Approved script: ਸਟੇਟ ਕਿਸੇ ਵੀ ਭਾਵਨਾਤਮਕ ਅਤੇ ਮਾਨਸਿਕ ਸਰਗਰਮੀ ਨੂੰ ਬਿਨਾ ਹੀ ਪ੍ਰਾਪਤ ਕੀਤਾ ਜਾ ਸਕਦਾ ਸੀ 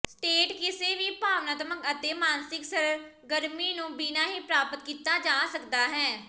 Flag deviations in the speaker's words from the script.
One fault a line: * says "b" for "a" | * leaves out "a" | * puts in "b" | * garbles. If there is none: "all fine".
* says "ਹੈ" for "ਸੀ"